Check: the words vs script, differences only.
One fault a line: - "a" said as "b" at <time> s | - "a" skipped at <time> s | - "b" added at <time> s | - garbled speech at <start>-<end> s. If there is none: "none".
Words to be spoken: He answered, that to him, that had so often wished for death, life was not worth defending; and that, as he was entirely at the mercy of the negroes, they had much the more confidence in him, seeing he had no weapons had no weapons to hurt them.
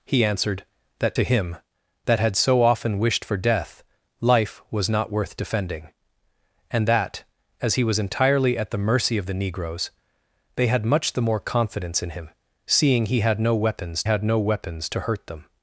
none